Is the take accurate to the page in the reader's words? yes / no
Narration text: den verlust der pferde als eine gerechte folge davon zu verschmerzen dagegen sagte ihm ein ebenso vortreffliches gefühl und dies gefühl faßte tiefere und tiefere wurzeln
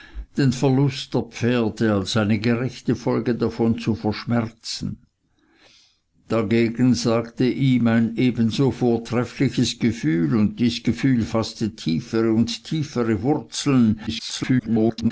no